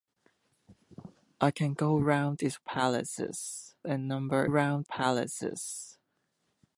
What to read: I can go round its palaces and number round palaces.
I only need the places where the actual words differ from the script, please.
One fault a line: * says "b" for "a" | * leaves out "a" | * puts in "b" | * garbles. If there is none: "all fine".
all fine